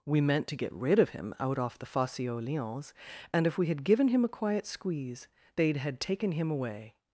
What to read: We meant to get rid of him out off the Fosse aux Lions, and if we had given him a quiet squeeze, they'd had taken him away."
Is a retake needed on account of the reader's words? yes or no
no